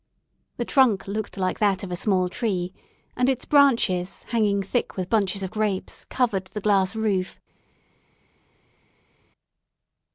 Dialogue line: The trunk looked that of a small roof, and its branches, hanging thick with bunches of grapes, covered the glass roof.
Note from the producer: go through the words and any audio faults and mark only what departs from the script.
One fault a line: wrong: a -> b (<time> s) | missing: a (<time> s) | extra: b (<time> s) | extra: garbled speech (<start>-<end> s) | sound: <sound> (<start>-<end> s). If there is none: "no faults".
extra: like (1.4 s)
wrong: roof -> tree (2.3 s)